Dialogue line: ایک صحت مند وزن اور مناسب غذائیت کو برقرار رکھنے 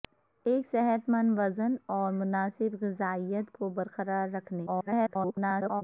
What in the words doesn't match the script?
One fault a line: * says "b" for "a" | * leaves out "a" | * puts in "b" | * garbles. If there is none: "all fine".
* garbles